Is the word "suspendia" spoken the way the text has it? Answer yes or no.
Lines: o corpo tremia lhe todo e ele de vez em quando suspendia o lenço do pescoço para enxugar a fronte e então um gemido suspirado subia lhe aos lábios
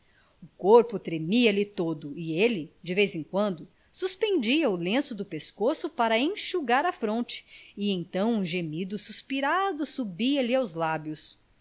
yes